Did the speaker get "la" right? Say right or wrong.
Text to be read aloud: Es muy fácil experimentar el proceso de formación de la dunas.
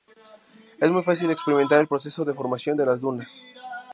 wrong